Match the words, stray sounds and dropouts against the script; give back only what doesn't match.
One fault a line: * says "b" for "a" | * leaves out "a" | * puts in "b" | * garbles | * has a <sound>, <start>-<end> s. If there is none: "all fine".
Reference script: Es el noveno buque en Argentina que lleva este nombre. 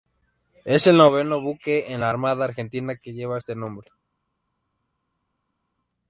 * puts in "la Armada"